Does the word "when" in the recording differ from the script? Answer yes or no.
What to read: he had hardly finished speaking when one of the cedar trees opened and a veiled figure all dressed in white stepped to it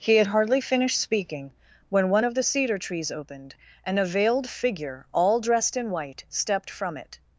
no